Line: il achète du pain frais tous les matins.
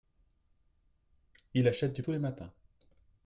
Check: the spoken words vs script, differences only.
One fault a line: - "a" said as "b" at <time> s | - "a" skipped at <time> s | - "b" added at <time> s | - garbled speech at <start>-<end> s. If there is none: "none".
- "pain frais" skipped at 2.0 s